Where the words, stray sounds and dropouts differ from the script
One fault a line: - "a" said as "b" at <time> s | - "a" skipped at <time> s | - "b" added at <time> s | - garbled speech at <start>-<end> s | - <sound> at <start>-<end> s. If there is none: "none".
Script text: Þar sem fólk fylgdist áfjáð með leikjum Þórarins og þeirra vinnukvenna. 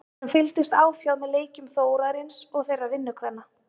- "fólk" skipped at 0.3 s